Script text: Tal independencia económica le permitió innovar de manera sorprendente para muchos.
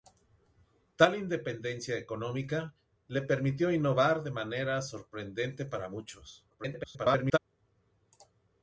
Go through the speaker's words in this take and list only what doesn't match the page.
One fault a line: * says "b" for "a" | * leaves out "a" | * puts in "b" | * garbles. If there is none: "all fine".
* garbles